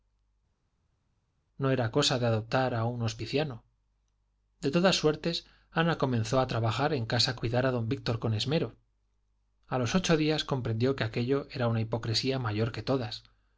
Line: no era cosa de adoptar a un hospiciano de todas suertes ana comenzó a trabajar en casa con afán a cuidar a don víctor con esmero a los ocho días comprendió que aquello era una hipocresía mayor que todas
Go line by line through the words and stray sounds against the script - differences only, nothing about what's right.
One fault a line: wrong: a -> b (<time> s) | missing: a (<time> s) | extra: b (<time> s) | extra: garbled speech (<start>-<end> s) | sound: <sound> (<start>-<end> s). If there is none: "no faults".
missing: con afán a (7.4 s)